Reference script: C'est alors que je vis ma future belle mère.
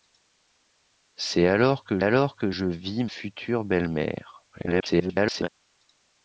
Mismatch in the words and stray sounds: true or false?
true